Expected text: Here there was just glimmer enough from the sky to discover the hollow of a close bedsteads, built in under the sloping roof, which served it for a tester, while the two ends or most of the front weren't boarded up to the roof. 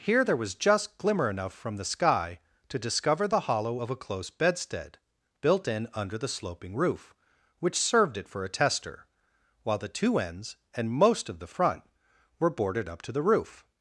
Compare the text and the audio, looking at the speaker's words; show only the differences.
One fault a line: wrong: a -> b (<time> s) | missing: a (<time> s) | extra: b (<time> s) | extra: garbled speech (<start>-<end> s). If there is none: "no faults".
wrong: bedsteads -> bedstead (4.3 s)
wrong: or -> and (10.7 s)
wrong: weren't -> were (12.4 s)